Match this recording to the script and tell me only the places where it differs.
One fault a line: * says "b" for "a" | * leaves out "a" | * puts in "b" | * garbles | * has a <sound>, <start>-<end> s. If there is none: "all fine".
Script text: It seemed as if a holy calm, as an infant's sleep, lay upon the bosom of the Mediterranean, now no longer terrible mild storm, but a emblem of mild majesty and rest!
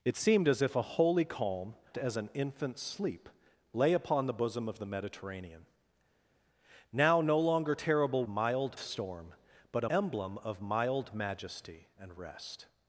all fine